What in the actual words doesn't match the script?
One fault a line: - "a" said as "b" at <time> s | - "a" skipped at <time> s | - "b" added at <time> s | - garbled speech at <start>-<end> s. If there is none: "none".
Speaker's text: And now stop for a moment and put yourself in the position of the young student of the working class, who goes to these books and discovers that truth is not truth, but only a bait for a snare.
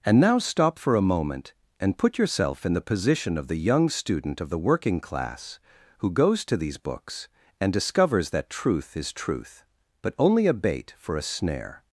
- "not" skipped at 9.1 s